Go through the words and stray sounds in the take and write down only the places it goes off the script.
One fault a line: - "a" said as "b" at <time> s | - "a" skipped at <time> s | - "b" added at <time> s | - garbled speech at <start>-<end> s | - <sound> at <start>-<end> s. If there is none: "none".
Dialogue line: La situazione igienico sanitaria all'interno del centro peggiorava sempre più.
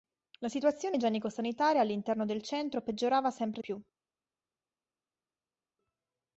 none